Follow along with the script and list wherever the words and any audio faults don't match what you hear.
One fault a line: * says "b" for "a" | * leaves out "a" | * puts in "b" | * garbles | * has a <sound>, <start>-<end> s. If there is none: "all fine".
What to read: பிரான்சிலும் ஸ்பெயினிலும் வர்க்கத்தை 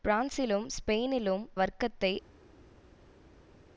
all fine